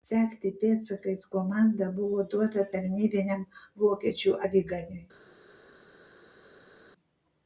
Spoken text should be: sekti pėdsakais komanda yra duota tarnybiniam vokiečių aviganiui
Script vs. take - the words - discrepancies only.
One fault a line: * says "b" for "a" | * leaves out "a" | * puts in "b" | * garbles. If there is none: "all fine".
* says "buvo" for "yra"